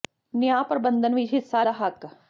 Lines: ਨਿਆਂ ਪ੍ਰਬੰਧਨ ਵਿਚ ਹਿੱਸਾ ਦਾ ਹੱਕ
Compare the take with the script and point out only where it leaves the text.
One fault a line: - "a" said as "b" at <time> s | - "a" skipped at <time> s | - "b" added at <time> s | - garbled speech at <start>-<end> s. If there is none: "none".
none